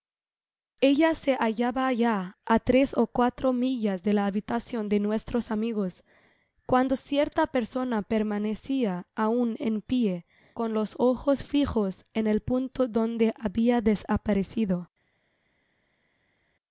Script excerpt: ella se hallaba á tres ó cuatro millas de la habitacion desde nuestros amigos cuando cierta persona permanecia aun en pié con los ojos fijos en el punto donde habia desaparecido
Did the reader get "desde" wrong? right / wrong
wrong